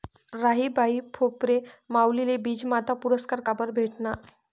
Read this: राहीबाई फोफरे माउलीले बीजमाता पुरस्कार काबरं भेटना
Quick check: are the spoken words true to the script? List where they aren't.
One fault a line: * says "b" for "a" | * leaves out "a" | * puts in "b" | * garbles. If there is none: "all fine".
all fine